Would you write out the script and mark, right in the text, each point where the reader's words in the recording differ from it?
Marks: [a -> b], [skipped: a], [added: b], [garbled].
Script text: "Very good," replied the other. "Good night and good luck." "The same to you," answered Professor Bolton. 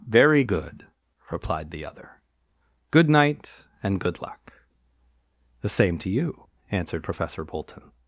"Very good," replied the other. "Good night and good luck." "The same to you," answered Professor Bolton.